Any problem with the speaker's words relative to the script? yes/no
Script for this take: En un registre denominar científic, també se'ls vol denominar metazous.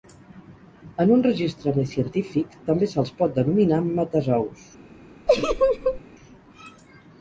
yes